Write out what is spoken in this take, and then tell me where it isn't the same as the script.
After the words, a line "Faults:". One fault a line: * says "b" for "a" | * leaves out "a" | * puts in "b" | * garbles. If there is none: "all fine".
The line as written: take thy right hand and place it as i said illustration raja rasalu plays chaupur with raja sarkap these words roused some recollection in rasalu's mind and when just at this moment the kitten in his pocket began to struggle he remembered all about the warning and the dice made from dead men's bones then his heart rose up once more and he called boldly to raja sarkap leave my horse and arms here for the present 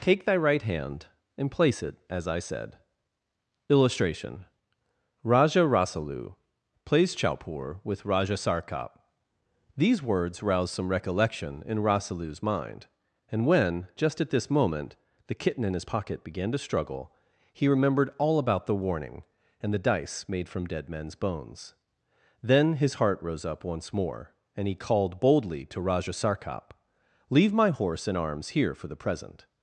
take thy right hand and place it as i said illustration raja rasalu plays chaupur with raja sarkap these words rouse some recollection in rasalu's mind and when just at this moment the kitten in his pocket began to struggle he remembered all about the warning and the dice made from dead men's bones then his heart rose up once more and he called boldly to raja sarkap leave my horse and arms here for the present
Faults:
* says "rouse" for "roused"